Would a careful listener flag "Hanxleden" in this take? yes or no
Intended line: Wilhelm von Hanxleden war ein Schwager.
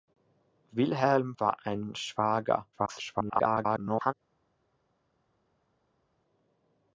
yes